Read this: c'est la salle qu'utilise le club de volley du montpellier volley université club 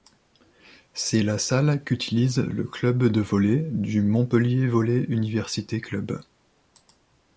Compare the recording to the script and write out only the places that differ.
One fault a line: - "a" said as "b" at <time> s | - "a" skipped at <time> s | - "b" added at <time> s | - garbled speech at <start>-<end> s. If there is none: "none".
none